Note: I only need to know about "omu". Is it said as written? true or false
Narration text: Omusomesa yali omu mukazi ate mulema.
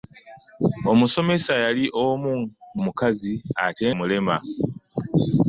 true